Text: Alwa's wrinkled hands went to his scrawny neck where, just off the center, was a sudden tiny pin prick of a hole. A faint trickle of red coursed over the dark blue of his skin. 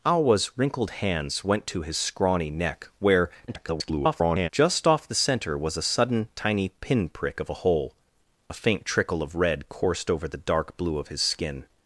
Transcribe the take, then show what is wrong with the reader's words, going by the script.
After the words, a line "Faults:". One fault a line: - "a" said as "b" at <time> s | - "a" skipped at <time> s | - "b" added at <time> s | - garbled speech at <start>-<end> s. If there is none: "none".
Alwa's wrinkled hands went to his scrawny neck where, [garbled] just off the center, was a sudden tiny pin prick of a hole. A faint trickle of red coursed over the dark blue of his skin.
Faults:
- garbled speech at 3.5-4.5 s